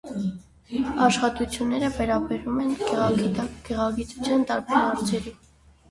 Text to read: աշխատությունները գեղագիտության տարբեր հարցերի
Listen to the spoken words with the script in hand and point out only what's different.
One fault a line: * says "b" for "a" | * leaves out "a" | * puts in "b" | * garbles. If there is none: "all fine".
* puts in "վերաբերում են"